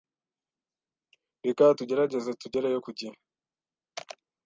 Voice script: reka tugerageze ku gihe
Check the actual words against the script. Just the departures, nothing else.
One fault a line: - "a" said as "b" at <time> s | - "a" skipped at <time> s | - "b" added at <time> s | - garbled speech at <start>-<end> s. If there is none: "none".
- "tugereyo" added at 2.4 s